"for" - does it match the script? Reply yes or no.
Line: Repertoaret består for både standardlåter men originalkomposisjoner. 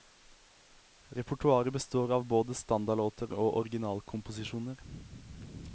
no